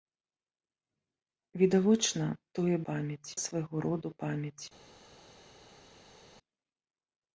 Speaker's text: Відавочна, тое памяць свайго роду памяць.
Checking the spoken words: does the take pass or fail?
pass